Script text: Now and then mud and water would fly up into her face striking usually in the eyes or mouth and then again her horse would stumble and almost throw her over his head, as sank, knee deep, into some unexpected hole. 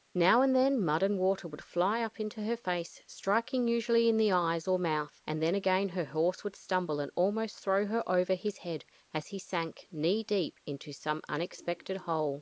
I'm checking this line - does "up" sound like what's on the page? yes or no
yes